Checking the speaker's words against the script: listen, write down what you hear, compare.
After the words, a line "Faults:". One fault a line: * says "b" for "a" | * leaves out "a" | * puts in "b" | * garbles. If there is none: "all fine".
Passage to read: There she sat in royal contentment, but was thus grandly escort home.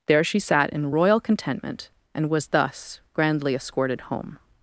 There she sat in royal contentment, and was thus grandly escorted home.
Faults:
* says "and" for "but"
* says "escorted" for "escort"